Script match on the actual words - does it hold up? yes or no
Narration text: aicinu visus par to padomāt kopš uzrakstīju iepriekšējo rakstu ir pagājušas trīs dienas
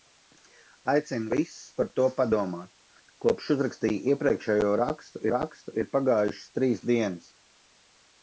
no